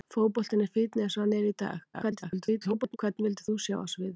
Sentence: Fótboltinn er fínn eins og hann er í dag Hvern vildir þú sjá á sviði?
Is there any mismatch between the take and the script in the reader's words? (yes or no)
yes